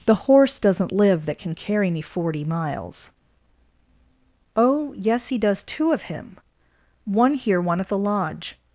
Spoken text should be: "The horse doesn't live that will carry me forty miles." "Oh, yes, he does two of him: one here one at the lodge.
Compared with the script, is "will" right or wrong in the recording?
wrong